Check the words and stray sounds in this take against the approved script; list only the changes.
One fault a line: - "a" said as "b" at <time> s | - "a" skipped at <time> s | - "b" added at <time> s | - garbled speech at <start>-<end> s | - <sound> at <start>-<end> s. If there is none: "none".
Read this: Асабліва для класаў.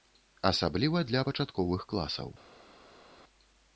- "пачатковых" added at 1.3 s